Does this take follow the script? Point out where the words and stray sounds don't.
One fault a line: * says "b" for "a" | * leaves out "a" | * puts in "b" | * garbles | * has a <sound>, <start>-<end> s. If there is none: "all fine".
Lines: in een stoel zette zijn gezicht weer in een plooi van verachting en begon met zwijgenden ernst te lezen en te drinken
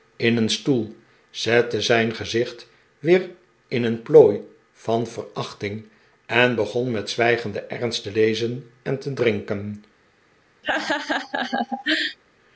* has a laugh, 10.6-12.2 s